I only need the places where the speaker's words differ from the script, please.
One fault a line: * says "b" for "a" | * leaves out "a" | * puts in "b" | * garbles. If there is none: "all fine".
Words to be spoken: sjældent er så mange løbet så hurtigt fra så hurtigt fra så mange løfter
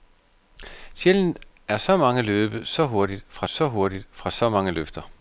all fine